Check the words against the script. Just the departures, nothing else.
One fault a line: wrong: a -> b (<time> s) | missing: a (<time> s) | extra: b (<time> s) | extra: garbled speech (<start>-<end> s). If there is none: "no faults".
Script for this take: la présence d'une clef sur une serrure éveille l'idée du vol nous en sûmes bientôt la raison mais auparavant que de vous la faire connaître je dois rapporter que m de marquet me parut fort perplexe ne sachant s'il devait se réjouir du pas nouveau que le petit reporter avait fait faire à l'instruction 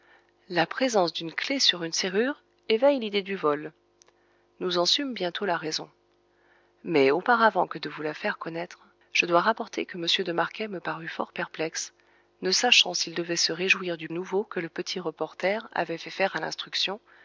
missing: pas (14.1 s)